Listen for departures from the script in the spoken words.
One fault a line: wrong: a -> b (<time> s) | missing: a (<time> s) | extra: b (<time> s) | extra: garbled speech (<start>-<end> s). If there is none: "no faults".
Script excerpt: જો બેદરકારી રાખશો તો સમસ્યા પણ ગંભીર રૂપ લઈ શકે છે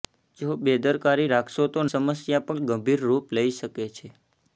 no faults